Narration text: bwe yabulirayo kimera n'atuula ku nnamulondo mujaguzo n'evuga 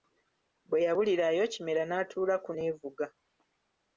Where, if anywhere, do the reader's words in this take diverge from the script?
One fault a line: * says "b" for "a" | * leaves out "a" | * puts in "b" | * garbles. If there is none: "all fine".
* leaves out "nnamulondo mujaguzo"